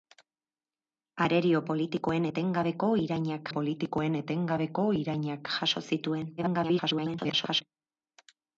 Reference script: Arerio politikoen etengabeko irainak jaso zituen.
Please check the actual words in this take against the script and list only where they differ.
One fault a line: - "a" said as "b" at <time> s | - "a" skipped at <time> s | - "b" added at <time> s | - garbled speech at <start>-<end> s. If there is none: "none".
- "politikoen etengabeko irainak" added at 3.5 s
- garbled speech at 6.4-7.6 s